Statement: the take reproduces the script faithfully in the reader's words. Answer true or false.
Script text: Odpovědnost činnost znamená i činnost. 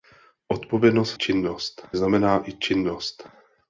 true